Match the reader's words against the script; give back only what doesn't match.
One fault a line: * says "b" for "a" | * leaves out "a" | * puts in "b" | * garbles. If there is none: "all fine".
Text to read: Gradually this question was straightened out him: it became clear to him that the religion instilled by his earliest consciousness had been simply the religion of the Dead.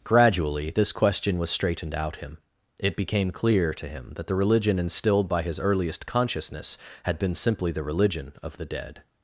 all fine